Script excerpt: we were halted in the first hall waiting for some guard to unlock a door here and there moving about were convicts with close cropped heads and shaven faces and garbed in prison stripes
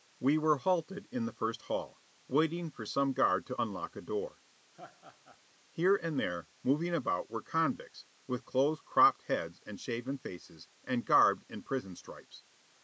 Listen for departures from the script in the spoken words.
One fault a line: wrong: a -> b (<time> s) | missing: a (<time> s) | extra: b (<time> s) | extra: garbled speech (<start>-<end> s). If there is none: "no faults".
no faults